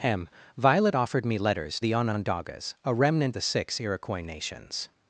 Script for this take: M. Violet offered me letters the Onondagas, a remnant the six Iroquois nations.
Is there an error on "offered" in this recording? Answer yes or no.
no